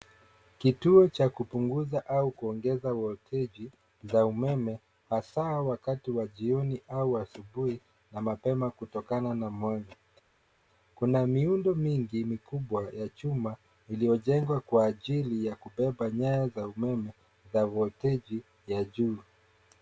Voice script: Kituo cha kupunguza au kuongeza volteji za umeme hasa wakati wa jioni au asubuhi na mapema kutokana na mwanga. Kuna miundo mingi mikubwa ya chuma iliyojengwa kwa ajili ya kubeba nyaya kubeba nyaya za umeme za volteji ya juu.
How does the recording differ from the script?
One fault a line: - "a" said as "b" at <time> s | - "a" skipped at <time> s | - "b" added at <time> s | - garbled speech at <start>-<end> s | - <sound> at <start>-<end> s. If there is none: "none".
- "kubeba nyaya" skipped at 16.5 s